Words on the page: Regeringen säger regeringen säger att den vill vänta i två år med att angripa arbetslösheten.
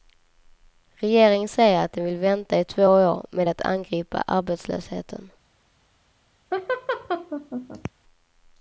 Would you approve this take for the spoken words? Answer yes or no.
no